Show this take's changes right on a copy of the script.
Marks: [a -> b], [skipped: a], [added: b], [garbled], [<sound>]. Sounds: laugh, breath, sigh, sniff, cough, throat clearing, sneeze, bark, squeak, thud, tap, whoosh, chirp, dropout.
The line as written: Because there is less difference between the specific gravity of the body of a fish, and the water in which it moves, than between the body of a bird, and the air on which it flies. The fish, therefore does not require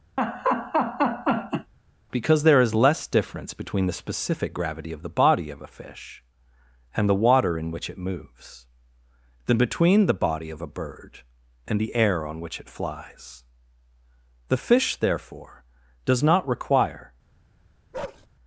[laugh] Because there is less difference between the specific gravity of the body of a fish, and the water in which it moves, than between the body of a bird, and the air on which it flies. The fish, therefore does not require [bark]